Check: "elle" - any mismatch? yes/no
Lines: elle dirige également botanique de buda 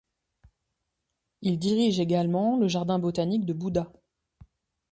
yes